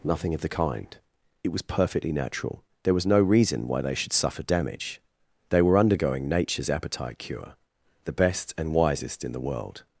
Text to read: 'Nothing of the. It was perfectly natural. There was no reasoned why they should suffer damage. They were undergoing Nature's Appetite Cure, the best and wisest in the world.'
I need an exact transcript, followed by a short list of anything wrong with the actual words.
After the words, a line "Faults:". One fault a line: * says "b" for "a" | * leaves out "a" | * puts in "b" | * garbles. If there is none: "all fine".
'Nothing of the kind. It was perfectly natural. There was no reason why they should suffer damage. They were undergoing Nature's Appetite Cure, the best and wisest in the world.'
Faults:
* puts in "kind"
* says "reason" for "reasoned"